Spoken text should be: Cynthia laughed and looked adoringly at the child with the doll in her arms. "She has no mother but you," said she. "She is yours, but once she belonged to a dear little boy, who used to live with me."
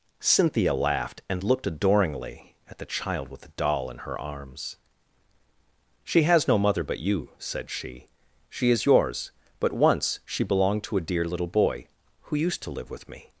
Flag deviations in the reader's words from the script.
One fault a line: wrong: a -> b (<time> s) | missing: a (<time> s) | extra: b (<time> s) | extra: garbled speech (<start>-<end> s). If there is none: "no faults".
no faults